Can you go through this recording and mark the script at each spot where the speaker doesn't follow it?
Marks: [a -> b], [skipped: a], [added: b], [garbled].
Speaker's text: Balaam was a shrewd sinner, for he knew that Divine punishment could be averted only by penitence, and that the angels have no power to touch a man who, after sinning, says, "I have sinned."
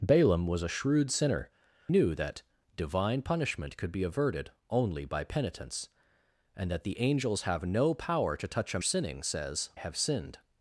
Balaam was a shrewd sinner, [skipped: for he] knew that Divine punishment could be averted only by penitence, and that the angels have no power to touch a [skipped: man who, after] sinning, says, [skipped: "I] have sinned."